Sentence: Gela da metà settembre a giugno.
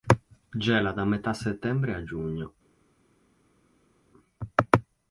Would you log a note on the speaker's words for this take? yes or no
no